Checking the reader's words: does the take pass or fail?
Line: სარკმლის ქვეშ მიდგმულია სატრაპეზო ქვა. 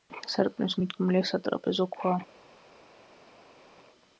fail